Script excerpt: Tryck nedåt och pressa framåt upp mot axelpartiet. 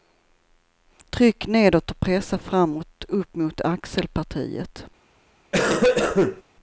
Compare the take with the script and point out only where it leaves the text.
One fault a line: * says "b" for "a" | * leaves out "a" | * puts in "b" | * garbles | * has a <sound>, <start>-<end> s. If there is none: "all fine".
* has a cough, 5.5-6.4 s